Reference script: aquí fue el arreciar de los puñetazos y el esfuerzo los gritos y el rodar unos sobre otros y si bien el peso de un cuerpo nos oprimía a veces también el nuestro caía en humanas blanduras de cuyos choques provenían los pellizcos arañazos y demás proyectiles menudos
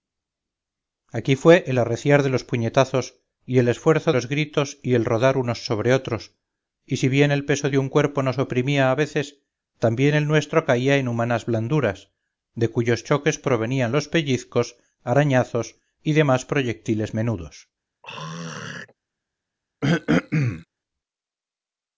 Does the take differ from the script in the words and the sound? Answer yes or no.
yes